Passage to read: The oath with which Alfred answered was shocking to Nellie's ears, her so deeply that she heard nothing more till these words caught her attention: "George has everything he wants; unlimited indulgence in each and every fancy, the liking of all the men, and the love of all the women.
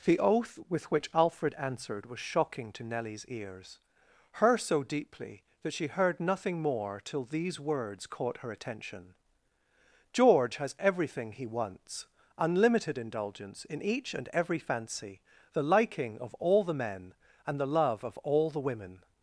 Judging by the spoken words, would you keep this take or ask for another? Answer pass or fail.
pass